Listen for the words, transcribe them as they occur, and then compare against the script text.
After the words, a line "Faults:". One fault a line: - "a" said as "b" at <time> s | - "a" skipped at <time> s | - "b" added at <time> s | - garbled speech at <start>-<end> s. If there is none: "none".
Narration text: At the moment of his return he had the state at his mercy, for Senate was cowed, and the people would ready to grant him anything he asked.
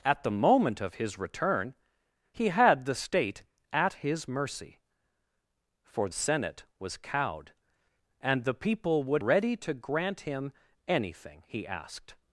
At the moment of his return he had the state at his mercy, for Senate was cowed, and the people would ready to grant him anything he asked.
Faults:
none